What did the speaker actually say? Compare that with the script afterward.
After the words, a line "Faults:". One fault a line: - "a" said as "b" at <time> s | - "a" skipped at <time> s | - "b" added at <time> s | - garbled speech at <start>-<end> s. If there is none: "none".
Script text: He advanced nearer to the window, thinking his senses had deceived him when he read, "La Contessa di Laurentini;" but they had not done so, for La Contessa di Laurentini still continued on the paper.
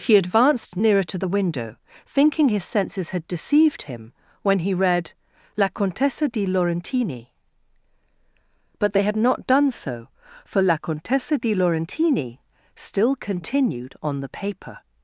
He advanced nearer to the window, thinking his senses had deceived him when he read, "La Contessa di Laurentini;" but they had not done so, for La Contessa di Laurentini still continued on the paper.
Faults:
none